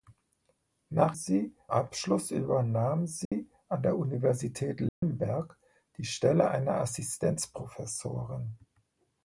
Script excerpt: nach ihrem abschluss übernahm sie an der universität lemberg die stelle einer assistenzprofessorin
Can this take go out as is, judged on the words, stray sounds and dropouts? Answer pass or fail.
fail